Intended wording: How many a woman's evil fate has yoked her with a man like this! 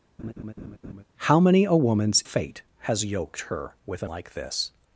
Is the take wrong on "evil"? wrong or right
wrong